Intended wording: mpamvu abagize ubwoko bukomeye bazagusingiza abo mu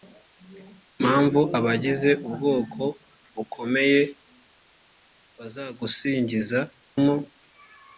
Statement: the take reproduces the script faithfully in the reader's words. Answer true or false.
false